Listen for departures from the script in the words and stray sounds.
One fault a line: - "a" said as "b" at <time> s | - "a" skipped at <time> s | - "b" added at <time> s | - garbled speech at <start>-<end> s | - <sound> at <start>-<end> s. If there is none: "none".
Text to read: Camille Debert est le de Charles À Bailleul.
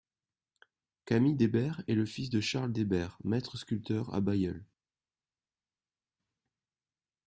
- "fils" added at 2.1 s
- "Debert maître sculpteur" added at 2.7 s